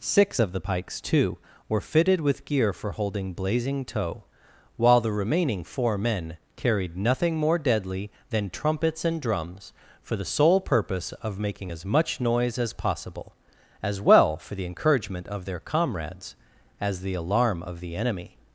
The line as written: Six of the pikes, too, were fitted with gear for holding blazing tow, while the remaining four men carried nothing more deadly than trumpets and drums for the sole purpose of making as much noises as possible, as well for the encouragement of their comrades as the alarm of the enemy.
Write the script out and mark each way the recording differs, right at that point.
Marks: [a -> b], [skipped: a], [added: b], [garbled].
Six of the pikes, too, were fitted with gear for holding blazing tow, while the remaining four men carried nothing more deadly than trumpets and drums for the sole purpose of making as much [noises -> noise] as possible, as well for the encouragement of their comrades as the alarm of the enemy.